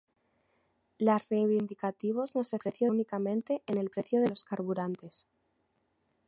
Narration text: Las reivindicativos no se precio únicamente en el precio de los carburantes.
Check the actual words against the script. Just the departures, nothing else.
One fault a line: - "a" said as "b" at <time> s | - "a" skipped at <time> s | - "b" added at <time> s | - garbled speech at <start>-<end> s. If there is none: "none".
none